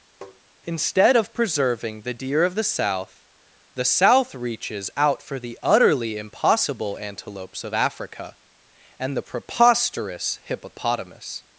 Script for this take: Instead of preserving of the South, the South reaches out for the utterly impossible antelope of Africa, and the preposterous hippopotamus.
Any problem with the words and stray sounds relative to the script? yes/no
yes